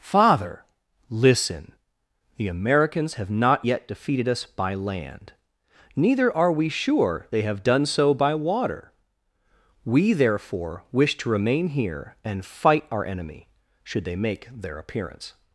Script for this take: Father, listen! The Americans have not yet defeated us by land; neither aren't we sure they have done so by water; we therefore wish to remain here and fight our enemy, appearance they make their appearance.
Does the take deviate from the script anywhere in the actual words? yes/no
yes